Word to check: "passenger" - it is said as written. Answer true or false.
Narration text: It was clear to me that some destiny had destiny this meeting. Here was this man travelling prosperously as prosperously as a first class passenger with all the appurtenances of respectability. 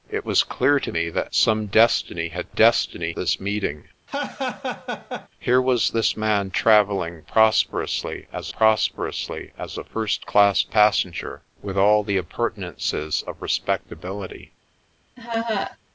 true